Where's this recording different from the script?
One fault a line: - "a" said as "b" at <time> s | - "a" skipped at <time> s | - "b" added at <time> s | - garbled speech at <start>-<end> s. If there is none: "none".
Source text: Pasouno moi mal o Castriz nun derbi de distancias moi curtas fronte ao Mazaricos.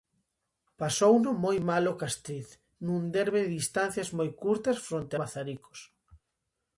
- "ao" skipped at 5.2 s